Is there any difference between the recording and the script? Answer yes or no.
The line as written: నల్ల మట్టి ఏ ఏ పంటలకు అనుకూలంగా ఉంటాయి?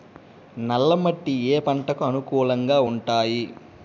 no